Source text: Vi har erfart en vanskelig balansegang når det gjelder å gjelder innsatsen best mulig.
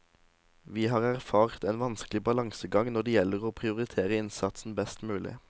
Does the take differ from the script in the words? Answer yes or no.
yes